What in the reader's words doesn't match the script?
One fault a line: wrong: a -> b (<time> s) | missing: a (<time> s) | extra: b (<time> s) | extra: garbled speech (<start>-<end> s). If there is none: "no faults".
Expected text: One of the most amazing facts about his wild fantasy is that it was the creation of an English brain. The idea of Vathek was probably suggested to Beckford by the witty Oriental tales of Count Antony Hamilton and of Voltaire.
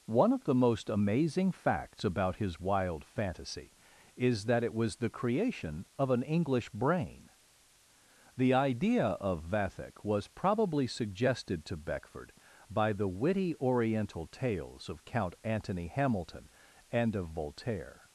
no faults